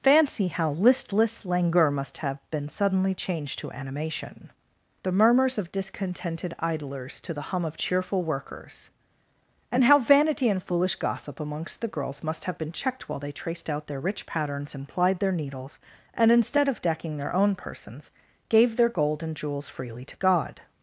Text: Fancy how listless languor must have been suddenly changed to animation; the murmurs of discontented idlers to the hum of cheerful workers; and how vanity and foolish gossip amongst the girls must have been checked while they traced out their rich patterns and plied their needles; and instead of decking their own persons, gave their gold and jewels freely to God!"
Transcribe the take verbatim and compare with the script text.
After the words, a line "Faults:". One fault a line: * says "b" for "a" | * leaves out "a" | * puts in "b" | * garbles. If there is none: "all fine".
Fancy how listless languor must have been suddenly changed to animation; the murmurs of discontented idlers to the hum of cheerful workers; and how vanity and foolish gossip amongst the girls must have been checked while they traced out their rich patterns and plied their needles; and instead of decking their own persons, gave their gold and jewels freely to God!"
Faults:
all fine